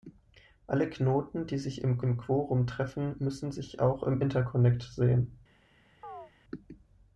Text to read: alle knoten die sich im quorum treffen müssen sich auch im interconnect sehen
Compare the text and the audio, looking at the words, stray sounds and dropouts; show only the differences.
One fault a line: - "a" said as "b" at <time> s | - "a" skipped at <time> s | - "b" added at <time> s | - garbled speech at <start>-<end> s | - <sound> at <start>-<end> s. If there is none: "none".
- "im" added at 2.0 s
- chirp at 6.0-6.3 s